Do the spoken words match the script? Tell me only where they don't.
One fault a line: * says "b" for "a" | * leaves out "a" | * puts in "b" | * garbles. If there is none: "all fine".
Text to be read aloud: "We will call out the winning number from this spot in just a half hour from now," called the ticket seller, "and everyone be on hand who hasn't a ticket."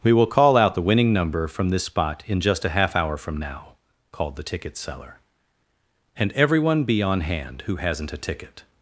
all fine